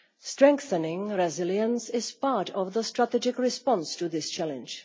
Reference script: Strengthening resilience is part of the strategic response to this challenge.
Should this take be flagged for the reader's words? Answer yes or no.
no